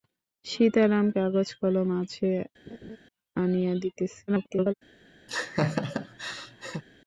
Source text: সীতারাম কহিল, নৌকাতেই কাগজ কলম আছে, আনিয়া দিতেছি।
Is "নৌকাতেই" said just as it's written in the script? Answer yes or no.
no